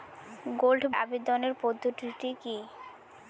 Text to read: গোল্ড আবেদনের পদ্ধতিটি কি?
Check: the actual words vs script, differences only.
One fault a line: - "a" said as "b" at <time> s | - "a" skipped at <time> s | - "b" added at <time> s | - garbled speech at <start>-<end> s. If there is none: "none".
none